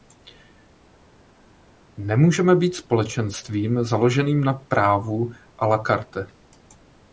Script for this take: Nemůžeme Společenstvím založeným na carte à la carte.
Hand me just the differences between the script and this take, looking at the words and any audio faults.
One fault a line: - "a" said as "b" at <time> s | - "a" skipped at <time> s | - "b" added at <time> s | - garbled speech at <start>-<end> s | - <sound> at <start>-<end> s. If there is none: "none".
- "být" added at 2.5 s
- "carte" said as "právu" at 4.5 s